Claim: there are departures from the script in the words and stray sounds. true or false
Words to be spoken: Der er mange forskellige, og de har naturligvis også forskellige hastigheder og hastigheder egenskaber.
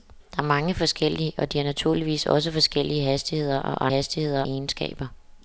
false